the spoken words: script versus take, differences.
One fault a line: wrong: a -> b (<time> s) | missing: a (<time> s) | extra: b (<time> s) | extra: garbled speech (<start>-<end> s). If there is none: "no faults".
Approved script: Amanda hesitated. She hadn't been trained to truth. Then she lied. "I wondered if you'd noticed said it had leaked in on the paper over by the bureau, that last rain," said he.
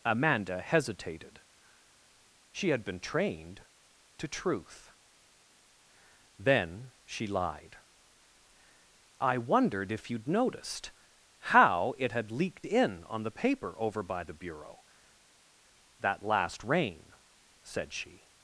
wrong: hadn't -> had (2.7 s)
wrong: said -> how (11.4 s)
wrong: he -> she (17.9 s)